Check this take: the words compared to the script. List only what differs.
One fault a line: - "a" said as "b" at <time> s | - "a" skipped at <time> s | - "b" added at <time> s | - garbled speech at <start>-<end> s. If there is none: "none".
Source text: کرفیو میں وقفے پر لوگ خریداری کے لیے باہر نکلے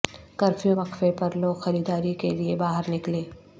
- "میں" skipped at 0.8 s